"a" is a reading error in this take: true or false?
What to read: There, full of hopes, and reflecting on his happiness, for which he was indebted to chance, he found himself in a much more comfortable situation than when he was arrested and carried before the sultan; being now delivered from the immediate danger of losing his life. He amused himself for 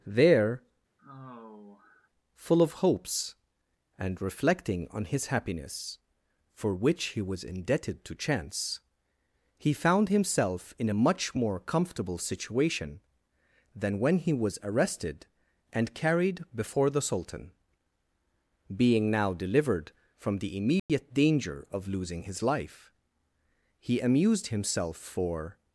false